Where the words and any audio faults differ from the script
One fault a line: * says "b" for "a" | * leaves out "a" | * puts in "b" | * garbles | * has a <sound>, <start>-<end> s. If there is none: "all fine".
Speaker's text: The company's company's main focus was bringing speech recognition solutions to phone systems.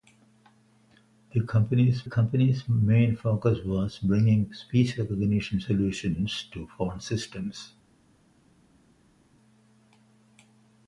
all fine